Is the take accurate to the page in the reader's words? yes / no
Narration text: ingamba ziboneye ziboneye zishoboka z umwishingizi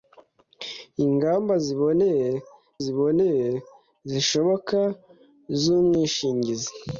yes